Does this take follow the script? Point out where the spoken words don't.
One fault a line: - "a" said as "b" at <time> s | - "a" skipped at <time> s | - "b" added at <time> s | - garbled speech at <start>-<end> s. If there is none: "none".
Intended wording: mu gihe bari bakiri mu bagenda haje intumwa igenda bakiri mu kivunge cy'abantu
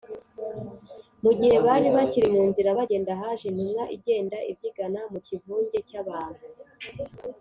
- "nzira" added at 2.5 s
- "bakiri" said as "ibyigana" at 4.5 s